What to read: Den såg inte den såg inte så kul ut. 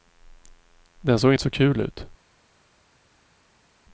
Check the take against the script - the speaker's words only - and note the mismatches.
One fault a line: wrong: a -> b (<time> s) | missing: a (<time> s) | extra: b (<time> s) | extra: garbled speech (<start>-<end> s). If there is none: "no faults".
missing: den såg inte (1.4 s)